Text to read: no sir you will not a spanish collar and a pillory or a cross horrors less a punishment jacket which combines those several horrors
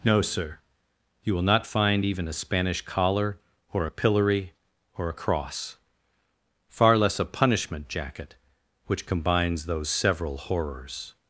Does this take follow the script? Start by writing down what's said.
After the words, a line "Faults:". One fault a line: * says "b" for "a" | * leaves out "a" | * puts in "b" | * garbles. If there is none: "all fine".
no sir you will not find even a spanish collar or a pillory or a cross far less a punishment jacket which combines those several horrors
Faults:
* puts in "find even"
* says "or" for "and"
* says "far" for "horrors"